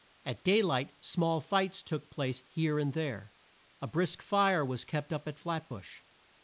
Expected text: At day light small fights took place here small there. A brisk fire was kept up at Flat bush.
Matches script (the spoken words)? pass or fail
fail